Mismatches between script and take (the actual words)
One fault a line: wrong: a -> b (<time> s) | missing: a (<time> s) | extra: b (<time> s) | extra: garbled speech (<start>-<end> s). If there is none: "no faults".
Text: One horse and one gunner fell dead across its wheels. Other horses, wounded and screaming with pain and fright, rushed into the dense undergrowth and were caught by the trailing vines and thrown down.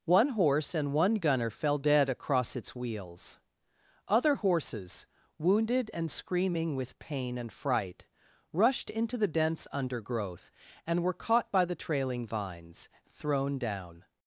missing: and (12.9 s)